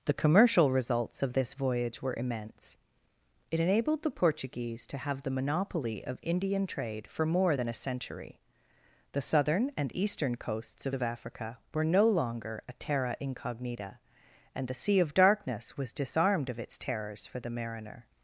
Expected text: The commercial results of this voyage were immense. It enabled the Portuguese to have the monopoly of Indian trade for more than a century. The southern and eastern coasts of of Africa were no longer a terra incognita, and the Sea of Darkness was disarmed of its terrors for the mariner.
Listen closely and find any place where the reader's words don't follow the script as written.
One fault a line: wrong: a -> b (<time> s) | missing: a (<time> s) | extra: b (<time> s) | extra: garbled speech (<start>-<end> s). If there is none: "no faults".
no faults